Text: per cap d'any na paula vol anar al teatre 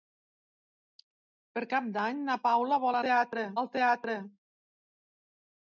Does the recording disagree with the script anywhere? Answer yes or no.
yes